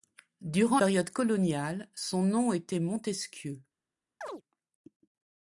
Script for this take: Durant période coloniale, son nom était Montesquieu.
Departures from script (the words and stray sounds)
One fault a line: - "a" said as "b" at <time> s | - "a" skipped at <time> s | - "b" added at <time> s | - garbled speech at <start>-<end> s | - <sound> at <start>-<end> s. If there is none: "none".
- chirp at 4.2-4.4 s